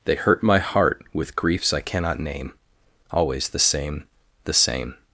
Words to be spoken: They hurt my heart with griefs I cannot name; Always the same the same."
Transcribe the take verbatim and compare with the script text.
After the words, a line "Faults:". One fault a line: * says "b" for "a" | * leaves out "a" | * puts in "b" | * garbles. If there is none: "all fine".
They hurt my heart with griefs I cannot name; Always the same the same."
Faults:
all fine